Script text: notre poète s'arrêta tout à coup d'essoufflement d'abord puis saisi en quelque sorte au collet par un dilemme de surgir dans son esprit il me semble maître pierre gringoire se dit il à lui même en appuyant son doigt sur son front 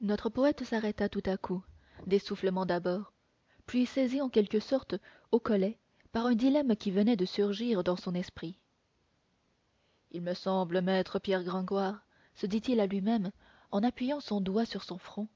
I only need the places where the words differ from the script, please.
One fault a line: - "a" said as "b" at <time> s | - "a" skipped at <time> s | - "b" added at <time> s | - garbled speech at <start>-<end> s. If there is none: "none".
- "qui venait" added at 6.8 s